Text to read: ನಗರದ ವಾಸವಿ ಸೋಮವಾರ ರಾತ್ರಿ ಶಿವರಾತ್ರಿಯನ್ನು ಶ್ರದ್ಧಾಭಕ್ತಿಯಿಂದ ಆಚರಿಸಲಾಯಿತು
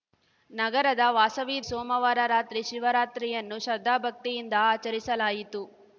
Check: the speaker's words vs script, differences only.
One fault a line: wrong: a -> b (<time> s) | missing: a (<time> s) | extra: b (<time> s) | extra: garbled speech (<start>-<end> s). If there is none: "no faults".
no faults